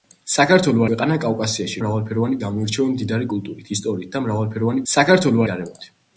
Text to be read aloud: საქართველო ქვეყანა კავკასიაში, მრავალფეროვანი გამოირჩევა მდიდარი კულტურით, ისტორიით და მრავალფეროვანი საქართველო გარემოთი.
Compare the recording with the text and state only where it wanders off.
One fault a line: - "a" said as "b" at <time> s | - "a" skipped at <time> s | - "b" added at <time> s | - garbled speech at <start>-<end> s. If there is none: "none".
none